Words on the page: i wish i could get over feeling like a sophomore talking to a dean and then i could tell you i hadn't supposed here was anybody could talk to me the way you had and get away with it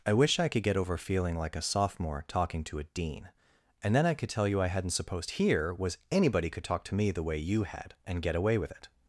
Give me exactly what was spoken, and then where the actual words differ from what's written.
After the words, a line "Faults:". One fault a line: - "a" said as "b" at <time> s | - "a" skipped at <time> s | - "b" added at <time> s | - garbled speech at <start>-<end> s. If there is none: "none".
i wish i could get over feeling like a sophomore talking to a dean and then i could tell you i hadn't supposed here was anybody could talk to me the way you had and get away with it
Faults:
none